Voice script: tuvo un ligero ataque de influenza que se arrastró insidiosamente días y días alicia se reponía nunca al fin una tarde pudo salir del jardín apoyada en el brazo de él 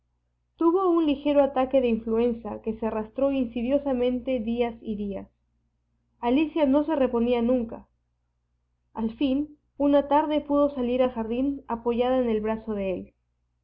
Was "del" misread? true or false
true